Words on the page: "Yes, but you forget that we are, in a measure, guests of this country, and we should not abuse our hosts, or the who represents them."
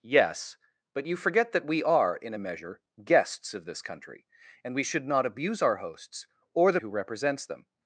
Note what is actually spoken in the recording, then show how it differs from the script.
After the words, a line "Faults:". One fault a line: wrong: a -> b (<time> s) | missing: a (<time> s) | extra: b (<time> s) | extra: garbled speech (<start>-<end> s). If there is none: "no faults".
"Yes, but you forget that we are, in a measure, guests of this country, and we should not abuse our hosts, or the who represents them."
Faults:
no faults